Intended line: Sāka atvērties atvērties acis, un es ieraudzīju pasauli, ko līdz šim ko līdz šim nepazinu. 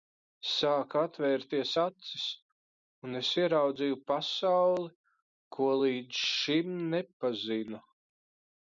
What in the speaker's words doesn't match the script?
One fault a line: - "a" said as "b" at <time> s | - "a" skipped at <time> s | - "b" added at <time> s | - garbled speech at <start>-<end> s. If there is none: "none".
- "atvērties" skipped at 1.7 s
- "ko līdz šim" skipped at 6.8 s